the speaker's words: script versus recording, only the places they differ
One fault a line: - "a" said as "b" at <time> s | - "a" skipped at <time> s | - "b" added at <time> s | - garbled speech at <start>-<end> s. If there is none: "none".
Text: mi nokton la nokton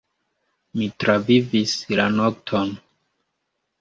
- "nokton" said as "travivis" at 1.0 s